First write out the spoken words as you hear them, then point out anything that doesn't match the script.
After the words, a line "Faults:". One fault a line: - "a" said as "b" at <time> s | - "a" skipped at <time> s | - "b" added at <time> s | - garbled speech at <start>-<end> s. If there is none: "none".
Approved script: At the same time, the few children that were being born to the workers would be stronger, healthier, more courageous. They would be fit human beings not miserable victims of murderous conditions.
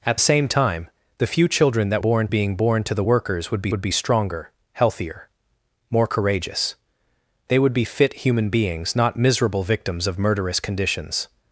At same time, the few children that born being born to the workers would be would be stronger, healthier, more courageous. They would be fit human beings not miserable victims of murderous conditions.
Faults:
- "the" skipped at 0.2 s
- "were" said as "born" at 2.0 s
- "would be" added at 3.7 s